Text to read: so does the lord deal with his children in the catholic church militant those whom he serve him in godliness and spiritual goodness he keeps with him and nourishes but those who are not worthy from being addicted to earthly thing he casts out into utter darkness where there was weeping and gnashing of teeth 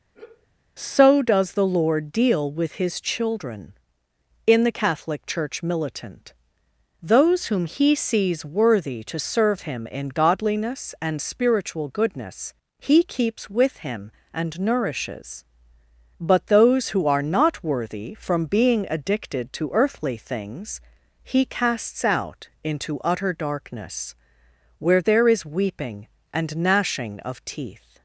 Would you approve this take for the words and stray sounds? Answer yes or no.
no